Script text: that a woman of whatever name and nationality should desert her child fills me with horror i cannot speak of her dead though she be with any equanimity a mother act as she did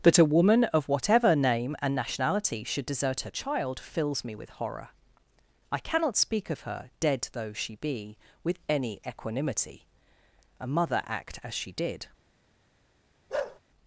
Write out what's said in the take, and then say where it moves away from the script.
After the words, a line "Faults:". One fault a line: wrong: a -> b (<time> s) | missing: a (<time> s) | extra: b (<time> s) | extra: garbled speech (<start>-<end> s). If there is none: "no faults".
that a woman of whatever name and nationality should desert her child fills me with horror i cannot speak of her dead though she be with any equanimity a mother act as she did
Faults:
no faults